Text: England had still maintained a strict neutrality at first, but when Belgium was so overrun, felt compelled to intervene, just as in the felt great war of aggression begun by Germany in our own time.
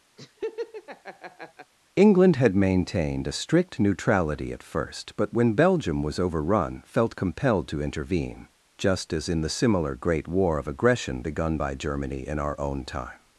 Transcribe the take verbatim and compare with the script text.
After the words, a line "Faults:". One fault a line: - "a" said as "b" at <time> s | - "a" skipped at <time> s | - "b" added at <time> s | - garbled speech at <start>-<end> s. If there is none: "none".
England had maintained a strict neutrality at first, but when Belgium was overrun, felt compelled to intervene, just as in the similar great war of aggression begun by Germany in our own time.
Faults:
- "still" skipped at 2.5 s
- "so" skipped at 6.2 s
- "felt" said as "similar" at 9.5 s